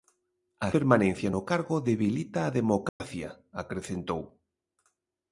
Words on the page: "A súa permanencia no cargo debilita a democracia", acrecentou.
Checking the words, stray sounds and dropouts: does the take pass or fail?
fail